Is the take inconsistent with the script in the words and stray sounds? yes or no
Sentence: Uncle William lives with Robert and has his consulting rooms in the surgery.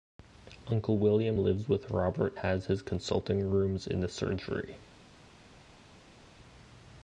yes